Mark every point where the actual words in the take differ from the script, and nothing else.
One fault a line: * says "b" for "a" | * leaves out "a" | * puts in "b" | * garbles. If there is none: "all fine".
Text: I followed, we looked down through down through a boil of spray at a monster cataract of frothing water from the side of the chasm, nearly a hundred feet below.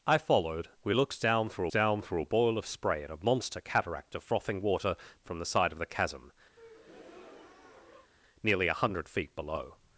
all fine